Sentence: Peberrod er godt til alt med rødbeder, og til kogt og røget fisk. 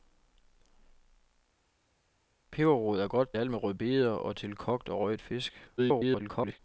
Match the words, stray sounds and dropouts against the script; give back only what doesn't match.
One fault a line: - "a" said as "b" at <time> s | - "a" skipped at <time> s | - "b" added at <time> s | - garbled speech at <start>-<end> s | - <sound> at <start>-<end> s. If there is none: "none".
- "til" skipped at 3.4 s
- garbled speech at 5.8-6.6 s